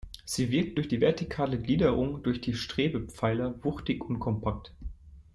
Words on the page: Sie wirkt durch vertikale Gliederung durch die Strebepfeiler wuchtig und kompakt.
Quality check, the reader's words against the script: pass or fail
fail